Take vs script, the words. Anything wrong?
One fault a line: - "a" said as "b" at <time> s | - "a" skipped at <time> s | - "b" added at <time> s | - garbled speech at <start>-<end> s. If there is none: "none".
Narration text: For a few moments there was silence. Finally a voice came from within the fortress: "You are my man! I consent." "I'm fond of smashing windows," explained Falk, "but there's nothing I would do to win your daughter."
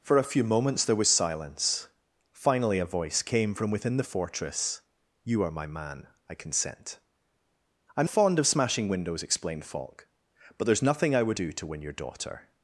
none